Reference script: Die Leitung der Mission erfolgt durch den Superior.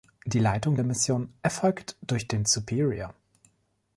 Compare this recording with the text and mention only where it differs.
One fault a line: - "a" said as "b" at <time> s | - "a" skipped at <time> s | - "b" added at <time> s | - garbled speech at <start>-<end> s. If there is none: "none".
none